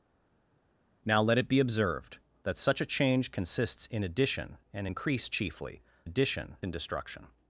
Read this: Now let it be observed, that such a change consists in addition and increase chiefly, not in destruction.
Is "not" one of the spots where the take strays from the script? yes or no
yes